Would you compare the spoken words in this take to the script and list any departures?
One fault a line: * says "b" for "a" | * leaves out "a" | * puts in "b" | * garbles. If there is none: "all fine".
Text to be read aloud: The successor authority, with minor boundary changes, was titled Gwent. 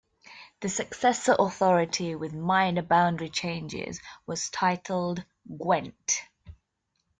all fine